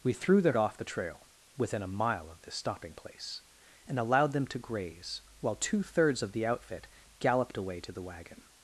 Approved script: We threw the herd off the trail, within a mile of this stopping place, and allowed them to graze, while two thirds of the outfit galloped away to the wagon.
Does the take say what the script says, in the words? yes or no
no